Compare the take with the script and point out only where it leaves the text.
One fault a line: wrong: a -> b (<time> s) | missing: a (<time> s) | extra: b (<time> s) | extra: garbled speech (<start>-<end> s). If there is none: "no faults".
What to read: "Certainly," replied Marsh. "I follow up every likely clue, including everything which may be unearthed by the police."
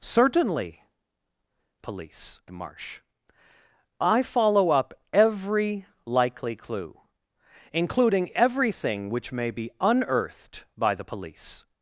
wrong: replied -> police (1.8 s)